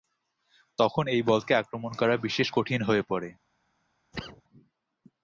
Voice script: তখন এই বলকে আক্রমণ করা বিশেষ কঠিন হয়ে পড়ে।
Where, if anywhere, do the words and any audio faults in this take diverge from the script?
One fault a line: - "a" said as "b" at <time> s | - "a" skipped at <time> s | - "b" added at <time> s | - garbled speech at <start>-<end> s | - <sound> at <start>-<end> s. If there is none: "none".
- cough at 4.1-4.4 s